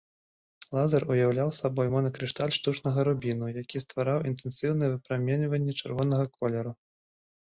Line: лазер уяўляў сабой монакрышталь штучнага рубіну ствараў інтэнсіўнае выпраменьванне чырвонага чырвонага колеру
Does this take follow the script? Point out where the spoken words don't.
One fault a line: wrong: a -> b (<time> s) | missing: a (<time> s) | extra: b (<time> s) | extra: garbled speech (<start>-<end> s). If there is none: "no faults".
extra: які (3.6 s)
missing: чырвонага (6.3 s)